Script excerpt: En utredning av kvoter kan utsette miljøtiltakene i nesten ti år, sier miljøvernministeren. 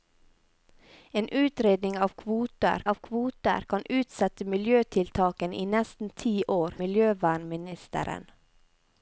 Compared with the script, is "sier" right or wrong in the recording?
wrong